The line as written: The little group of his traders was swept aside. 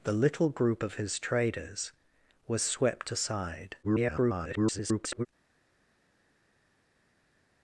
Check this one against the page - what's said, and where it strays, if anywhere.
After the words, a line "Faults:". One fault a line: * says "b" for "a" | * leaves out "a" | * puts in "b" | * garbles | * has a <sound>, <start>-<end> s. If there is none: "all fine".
The little group of his traders was swept aside. [garbled]
Faults:
* garbles